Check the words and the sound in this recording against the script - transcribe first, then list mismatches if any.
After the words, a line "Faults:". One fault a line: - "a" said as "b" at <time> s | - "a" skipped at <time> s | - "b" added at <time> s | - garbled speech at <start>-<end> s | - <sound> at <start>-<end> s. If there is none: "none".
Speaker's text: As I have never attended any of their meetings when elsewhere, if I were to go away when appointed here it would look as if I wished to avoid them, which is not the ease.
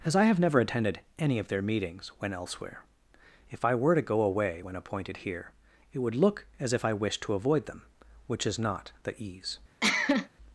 As I have never attended any of their meetings when elsewhere, if I were to go away when appointed here it would look as if I wished to avoid them, which is not the ease.
Faults:
- cough at 9.8-10.3 s